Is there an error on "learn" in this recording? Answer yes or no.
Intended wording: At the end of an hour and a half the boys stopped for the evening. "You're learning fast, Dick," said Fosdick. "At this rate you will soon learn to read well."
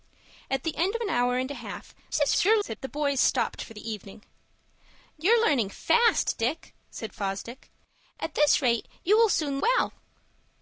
yes